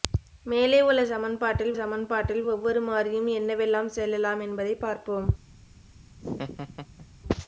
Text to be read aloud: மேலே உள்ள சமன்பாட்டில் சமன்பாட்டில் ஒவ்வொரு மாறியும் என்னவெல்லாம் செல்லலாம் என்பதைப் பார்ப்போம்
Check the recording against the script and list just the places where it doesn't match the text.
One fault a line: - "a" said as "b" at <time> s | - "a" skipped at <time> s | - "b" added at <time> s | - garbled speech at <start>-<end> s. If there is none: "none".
none